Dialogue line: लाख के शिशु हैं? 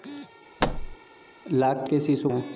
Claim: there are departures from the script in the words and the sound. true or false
true